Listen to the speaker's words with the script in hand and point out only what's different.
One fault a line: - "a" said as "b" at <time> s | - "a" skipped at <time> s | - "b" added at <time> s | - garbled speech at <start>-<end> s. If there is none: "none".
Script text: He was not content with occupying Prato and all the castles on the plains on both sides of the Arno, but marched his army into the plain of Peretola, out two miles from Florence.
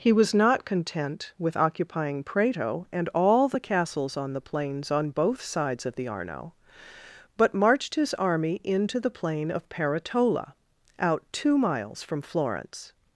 none